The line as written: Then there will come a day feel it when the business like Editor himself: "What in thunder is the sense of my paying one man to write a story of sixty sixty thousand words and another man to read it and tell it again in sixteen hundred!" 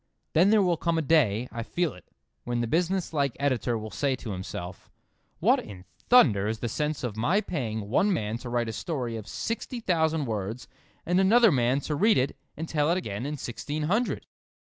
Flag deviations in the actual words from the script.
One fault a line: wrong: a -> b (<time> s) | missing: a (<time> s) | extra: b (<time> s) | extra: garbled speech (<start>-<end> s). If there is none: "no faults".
extra: I (1.5 s)
extra: will say to (3.8 s)
missing: sixty (9.8 s)